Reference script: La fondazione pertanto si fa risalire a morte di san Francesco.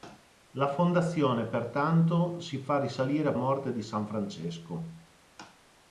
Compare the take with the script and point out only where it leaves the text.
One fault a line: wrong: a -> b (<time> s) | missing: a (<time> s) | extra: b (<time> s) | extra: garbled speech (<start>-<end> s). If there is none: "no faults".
no faults